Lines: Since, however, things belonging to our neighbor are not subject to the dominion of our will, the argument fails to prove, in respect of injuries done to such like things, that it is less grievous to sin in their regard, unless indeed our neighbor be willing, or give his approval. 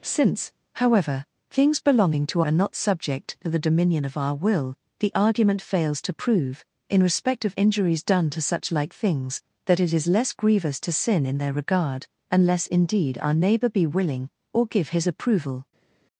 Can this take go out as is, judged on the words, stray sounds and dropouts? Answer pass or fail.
fail